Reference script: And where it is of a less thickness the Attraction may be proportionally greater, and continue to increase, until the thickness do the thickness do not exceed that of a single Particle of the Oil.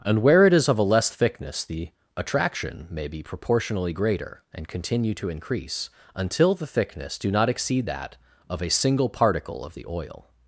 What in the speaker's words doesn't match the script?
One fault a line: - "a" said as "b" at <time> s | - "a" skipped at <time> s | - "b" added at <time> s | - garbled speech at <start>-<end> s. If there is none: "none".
- "the thickness do" skipped at 7.3 s